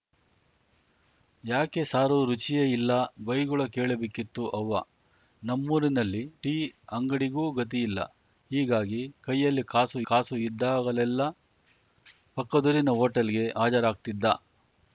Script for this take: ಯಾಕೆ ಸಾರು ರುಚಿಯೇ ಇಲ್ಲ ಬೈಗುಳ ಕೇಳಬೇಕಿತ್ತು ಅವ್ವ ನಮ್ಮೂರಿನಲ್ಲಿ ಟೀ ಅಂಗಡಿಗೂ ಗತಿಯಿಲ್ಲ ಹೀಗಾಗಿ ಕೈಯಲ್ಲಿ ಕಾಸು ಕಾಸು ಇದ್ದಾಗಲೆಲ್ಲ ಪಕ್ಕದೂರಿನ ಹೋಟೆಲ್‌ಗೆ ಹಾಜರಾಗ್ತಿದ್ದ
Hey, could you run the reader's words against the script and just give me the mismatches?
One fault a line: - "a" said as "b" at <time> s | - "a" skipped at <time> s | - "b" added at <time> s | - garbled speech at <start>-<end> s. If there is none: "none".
none